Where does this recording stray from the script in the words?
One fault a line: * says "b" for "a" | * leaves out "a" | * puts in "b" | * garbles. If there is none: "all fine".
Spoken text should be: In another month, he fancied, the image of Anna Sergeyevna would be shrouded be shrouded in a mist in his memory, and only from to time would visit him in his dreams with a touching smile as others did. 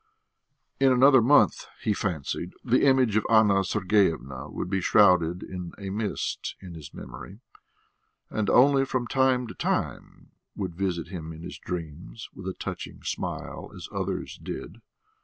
* leaves out "be shrouded"
* puts in "time"